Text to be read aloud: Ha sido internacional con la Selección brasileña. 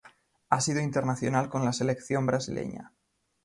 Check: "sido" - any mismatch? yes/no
no